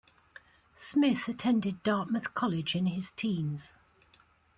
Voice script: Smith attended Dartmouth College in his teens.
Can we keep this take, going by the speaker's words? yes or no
yes